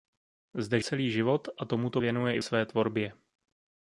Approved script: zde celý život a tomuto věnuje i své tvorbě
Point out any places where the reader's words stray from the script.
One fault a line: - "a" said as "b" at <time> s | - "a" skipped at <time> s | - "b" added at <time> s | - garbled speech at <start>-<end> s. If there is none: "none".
none